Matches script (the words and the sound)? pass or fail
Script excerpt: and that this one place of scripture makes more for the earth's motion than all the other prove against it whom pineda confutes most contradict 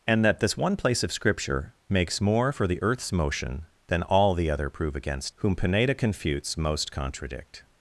fail